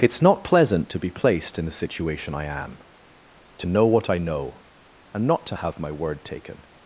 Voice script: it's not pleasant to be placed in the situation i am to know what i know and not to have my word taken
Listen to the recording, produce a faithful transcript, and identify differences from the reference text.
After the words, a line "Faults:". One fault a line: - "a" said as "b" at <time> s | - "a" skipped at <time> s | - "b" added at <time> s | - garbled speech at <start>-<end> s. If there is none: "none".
it's not pleasant to be placed in the situation i am to know what i know and not to have my word taken
Faults:
none